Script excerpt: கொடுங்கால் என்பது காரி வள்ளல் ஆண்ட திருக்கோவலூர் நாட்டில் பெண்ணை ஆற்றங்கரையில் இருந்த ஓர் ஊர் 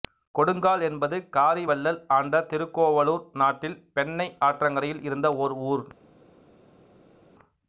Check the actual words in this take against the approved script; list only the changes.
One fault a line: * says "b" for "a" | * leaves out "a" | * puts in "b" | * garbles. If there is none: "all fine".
all fine